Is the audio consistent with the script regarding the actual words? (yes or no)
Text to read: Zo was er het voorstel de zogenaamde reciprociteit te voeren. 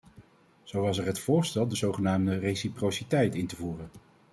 no